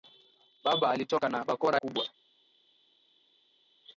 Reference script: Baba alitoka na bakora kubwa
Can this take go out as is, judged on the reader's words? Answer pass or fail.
pass